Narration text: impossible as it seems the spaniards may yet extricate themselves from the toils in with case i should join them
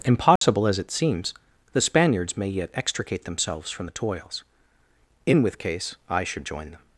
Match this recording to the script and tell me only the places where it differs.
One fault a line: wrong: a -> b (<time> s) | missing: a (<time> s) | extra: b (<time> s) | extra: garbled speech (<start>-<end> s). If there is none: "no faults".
no faults